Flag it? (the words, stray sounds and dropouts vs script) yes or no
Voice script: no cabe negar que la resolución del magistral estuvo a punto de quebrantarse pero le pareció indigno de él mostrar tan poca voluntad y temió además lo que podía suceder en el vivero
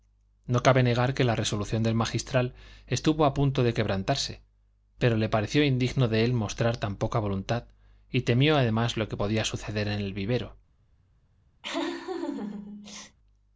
yes